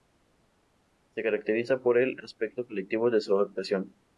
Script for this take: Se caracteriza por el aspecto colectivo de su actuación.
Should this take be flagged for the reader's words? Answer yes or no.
no